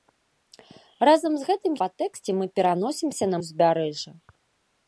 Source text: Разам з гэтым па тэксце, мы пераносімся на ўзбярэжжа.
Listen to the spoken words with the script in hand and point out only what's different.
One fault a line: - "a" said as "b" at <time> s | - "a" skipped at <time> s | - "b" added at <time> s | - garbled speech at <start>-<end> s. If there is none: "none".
none